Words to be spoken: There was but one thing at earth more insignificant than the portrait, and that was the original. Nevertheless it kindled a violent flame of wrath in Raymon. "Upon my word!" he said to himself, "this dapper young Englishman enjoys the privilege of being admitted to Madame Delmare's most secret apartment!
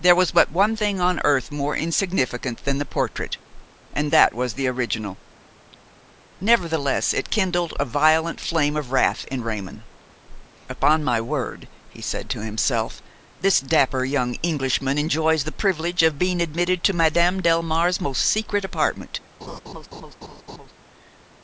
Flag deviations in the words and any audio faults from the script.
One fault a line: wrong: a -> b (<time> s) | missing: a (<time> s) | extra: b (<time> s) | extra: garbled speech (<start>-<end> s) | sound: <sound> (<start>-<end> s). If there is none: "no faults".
wrong: at -> on (1.0 s)
sound: laugh (19.4-20.7 s)